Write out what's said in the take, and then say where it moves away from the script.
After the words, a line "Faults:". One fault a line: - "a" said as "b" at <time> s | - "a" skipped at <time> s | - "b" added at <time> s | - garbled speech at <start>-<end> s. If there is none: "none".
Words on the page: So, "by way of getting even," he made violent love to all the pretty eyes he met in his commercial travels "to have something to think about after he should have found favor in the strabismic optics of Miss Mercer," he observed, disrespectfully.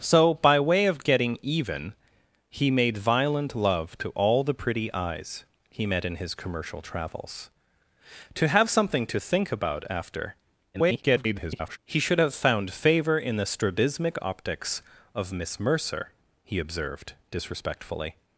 So, "by way of getting even," he made violent love to all the pretty eyes he met in his commercial travels "to have something to think about after [garbled] he should have found favor in the strabismic optics of Miss Mercer," he observed, disrespectfully.
Faults:
- garbled speech at 10.7-11.8 s